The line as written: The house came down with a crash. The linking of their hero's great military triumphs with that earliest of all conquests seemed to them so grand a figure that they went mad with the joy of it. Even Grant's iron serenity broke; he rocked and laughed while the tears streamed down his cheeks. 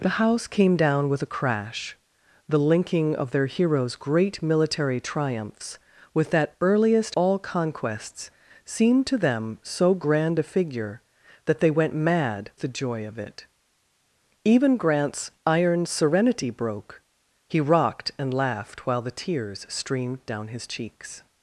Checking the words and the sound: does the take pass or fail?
fail